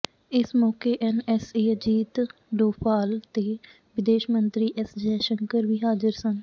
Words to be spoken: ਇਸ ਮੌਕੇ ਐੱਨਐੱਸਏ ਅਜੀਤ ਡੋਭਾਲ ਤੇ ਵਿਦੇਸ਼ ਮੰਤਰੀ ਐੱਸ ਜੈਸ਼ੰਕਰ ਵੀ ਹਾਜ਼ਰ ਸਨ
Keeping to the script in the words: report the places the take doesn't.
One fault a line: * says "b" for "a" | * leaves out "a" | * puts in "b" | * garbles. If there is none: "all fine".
all fine